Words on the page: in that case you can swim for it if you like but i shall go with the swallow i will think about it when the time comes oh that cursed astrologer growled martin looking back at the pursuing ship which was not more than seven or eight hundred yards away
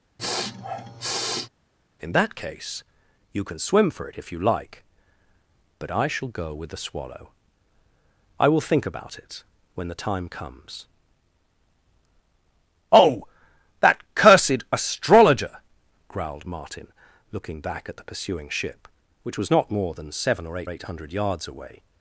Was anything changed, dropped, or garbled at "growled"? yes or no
no